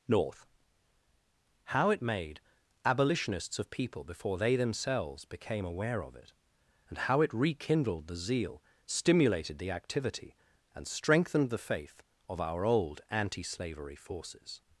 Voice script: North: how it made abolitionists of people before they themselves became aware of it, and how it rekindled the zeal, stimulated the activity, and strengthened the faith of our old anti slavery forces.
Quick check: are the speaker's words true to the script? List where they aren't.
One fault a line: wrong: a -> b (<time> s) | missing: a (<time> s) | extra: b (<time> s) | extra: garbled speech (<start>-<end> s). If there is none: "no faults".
no faults